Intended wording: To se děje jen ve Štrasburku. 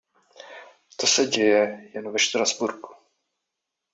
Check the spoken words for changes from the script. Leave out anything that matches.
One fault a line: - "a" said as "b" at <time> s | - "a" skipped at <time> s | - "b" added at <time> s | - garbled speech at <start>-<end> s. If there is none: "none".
none